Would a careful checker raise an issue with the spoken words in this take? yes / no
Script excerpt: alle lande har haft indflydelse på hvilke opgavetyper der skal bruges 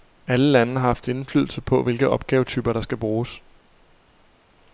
no